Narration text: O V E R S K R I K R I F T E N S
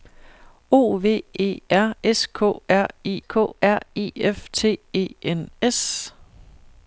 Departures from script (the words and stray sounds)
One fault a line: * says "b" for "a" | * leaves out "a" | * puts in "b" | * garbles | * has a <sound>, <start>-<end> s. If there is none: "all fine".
all fine